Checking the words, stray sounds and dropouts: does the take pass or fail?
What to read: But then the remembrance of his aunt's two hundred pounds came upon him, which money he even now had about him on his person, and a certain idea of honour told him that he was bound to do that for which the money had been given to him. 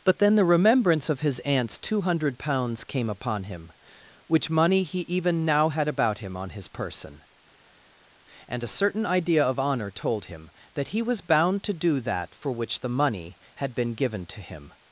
pass